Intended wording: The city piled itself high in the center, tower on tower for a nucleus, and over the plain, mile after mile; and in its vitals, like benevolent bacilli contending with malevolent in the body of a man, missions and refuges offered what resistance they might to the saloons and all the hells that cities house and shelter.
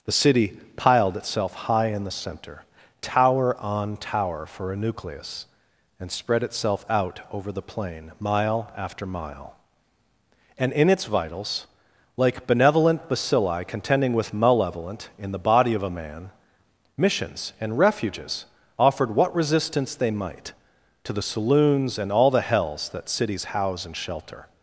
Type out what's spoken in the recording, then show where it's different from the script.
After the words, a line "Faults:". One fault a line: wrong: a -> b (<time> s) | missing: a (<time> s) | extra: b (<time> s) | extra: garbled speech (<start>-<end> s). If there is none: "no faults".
The city piled itself high in the center, tower on tower for a nucleus, and spread itself out over the plain, mile after mile; and in its vitals, like benevolent bacilli contending with malevolent in the body of a man, missions and refuges offered what resistance they might to the saloons and all the hells that cities house and shelter.
Faults:
extra: spread itself out (6.1 s)